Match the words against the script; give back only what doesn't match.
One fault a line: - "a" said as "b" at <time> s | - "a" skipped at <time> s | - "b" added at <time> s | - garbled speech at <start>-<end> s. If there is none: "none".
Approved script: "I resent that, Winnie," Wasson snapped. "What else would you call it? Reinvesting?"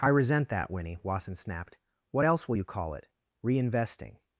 - "would" said as "will" at 2.5 s